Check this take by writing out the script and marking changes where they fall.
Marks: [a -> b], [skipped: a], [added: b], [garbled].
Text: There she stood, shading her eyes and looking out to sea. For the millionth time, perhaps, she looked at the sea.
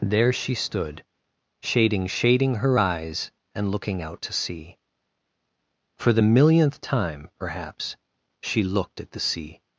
There she stood, shading [added: shading] her eyes and looking out to sea. For the millionth time, perhaps, she looked at the sea.